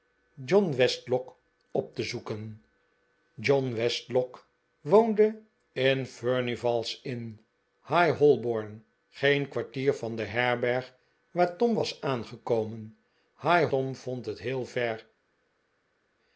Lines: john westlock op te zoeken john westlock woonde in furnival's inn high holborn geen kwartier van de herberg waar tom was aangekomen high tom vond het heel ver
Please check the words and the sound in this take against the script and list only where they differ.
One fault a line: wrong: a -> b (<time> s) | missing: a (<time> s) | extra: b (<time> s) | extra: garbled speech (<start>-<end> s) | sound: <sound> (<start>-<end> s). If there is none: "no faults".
no faults